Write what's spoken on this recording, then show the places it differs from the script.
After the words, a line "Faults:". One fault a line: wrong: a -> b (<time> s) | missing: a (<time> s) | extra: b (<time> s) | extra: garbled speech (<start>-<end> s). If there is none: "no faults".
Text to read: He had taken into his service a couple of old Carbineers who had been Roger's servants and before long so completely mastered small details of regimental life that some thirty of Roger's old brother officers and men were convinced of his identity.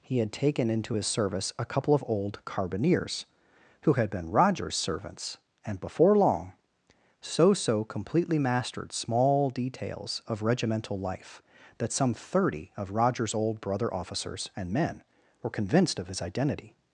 He had taken into his service a couple of old Carbineers who had been Roger's servants and before long so so completely mastered small details of regimental life that some thirty of Roger's old brother officers and men were convinced of his identity.
Faults:
extra: so (7.5 s)